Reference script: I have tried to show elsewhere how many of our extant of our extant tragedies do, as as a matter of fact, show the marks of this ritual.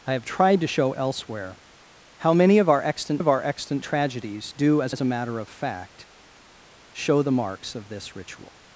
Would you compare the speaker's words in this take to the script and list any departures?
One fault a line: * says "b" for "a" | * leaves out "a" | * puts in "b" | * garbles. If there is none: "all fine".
all fine